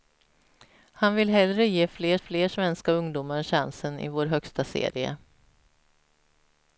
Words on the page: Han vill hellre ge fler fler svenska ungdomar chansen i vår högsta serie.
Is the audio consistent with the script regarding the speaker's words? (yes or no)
yes